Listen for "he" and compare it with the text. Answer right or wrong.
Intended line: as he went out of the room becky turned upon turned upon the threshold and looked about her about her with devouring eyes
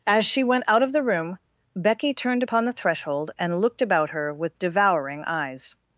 wrong